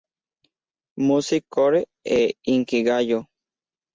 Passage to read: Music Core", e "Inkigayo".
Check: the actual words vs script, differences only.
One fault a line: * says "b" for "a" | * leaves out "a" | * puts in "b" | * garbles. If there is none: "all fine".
all fine